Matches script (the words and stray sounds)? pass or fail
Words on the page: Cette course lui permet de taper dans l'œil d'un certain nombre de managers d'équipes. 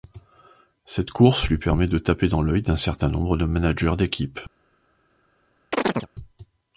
fail